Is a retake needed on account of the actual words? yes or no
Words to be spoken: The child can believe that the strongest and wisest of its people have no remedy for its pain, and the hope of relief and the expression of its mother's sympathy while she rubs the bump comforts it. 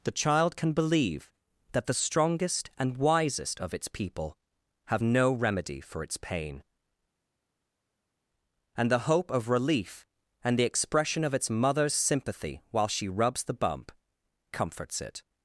no